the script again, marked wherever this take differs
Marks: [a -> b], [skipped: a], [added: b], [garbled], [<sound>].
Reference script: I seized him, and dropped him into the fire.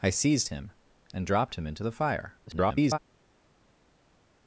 I seized him, and dropped him into the fire. [garbled]